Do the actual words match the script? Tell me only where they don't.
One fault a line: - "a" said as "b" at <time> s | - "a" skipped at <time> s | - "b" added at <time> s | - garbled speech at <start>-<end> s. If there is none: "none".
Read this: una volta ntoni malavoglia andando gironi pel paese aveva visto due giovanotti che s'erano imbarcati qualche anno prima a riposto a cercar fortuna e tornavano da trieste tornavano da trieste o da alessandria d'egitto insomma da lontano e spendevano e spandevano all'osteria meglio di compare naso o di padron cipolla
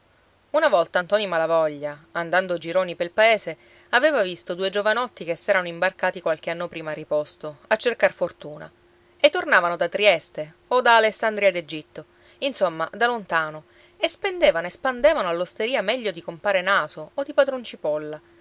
- "tornavano da trieste" skipped at 10.6 s